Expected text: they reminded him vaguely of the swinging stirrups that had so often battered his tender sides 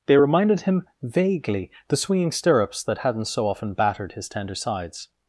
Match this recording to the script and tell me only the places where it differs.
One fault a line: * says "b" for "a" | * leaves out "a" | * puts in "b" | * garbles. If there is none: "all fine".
* leaves out "of"
* says "hadn't" for "had"